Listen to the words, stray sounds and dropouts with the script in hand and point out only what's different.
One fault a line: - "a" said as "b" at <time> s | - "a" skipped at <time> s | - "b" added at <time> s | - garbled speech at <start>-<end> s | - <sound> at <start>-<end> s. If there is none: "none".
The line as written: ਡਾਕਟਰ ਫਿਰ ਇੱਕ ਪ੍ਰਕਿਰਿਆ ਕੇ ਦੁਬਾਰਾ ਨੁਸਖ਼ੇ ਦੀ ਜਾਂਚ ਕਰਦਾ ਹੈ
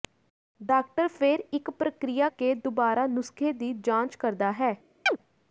- chirp at 5.1-5.2 s